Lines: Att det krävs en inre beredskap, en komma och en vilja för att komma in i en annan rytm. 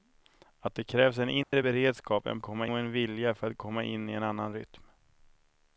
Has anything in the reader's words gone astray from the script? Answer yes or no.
no